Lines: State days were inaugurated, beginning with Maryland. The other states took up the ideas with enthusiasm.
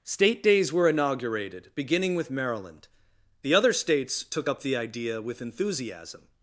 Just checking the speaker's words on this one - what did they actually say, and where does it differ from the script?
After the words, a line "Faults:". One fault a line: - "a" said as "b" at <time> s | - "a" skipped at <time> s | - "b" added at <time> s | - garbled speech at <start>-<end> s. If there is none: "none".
State days were inaugurated, beginning with Maryland. The other states took up the idea with enthusiasm.
Faults:
- "ideas" said as "idea" at 4.8 s